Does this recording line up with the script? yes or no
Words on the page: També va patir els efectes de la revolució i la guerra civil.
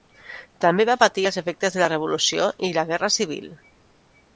yes